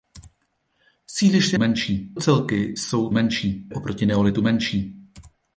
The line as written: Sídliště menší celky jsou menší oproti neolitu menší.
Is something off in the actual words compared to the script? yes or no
no